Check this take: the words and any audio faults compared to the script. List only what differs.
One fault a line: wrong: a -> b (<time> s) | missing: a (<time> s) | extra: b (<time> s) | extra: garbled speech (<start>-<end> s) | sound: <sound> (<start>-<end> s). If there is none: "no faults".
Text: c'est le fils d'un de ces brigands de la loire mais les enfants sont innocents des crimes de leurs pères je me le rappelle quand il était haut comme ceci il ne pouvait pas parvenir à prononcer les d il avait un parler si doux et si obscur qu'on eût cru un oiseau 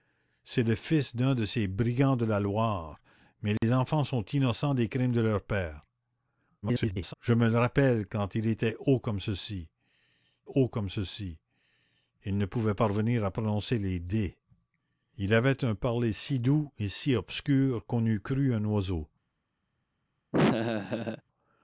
sound: dropout (3.6-3.6 s)
extra: garbled speech (6.6-7.1 s)
extra: haut comme ceci (10.5 s)
missing: pas (12.7 s)
sound: laugh (20.3-21.2 s)